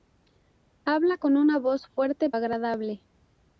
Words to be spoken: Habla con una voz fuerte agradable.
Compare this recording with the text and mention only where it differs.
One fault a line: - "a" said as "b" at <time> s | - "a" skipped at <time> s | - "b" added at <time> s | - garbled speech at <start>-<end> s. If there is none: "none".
none